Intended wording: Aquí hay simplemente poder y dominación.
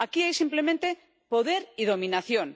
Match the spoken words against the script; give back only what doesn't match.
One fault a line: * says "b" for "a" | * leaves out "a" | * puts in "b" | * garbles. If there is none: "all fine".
all fine